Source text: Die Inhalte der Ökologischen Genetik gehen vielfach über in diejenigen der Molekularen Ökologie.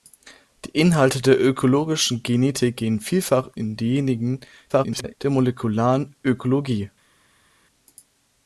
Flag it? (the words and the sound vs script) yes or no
yes